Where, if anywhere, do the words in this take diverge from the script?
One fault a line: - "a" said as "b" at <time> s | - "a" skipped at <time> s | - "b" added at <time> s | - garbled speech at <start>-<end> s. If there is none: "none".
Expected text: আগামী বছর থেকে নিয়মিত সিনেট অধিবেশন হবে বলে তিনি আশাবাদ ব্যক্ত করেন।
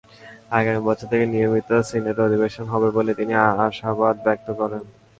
none